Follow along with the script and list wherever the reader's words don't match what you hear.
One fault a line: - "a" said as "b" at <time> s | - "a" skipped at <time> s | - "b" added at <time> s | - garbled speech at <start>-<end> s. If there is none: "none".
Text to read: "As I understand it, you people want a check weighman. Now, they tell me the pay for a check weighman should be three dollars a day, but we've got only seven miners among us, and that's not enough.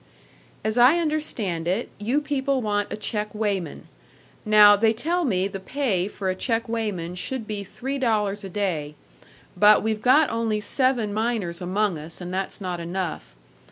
none